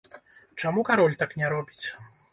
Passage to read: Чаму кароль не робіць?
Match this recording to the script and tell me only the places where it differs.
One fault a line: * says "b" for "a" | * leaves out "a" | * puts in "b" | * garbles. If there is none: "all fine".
* puts in "так"